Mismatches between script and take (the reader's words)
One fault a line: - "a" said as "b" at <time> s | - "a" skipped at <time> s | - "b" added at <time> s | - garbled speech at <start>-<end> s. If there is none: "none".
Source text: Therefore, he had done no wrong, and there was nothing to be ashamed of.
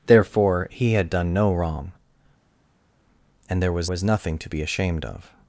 - "was" added at 3.9 s